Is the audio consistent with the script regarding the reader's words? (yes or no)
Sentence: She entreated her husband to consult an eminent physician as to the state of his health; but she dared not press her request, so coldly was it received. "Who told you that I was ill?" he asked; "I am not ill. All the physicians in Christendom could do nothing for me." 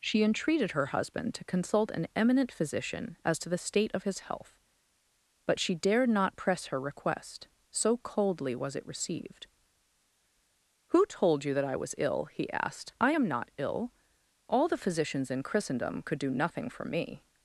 yes